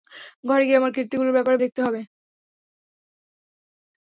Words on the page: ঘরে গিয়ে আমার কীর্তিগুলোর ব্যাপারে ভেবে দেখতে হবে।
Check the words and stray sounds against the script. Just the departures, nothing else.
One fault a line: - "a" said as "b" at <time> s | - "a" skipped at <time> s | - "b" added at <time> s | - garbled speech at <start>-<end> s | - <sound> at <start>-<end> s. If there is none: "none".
- "ভেবে" skipped at 1.6 s